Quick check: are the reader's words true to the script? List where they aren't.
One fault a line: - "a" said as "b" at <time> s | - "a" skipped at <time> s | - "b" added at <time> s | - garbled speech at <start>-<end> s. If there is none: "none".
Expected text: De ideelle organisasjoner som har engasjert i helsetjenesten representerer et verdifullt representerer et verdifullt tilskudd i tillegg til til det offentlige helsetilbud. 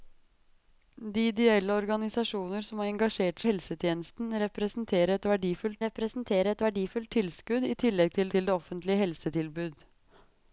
none